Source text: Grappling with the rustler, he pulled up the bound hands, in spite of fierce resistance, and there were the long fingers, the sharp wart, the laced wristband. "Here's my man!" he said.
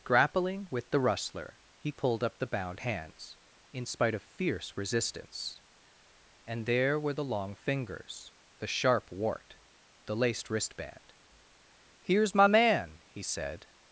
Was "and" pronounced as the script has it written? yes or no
yes